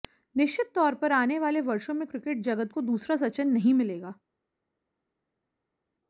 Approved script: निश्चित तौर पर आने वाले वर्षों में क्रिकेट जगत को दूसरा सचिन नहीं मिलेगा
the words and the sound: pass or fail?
pass